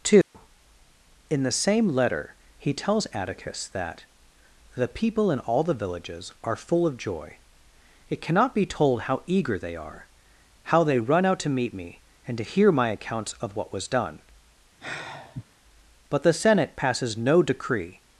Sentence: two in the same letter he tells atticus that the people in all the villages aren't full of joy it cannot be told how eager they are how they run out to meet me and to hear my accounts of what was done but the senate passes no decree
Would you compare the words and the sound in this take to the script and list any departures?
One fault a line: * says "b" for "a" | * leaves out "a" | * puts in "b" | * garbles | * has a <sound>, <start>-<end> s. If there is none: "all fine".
* has a dropout, 0.2-0.3 s
* says "are" for "aren't"
* has a sigh, 14.8-15.4 s